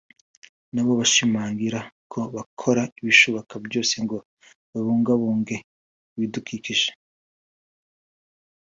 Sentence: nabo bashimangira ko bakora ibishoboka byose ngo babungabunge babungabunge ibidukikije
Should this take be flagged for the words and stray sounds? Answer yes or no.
yes